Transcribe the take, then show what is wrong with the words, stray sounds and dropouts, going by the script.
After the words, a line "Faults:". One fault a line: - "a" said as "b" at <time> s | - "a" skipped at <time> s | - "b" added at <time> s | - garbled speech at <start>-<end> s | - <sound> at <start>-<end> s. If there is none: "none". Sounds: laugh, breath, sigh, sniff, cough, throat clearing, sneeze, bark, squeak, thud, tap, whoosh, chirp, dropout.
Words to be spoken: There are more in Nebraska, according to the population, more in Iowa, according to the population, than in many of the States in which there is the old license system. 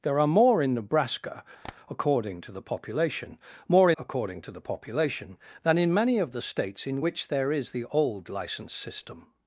There are more in Nebraska, according to the population, more according to the population, than in many of the States in which there is the old license system.
Faults:
- tap at 1.6-1.8 s
- "in Iowa" skipped at 3.9 s